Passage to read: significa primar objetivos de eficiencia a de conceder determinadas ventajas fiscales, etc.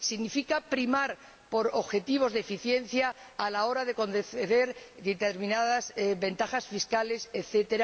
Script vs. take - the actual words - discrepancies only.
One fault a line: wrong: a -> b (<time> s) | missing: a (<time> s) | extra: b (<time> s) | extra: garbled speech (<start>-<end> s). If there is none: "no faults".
extra: por (1.5 s)
extra: la hora (3.5 s)